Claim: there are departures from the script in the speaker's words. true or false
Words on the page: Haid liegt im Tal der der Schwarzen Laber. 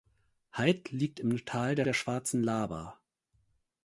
false